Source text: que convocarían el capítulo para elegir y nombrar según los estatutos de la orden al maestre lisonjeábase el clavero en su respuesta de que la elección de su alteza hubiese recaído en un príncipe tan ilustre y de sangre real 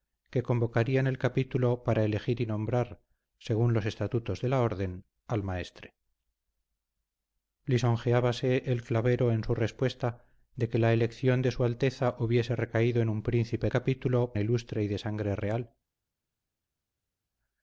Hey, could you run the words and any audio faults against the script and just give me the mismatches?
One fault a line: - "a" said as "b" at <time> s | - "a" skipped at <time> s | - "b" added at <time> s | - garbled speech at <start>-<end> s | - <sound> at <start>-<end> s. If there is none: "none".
- "tan" said as "capítulo" at 13.7 s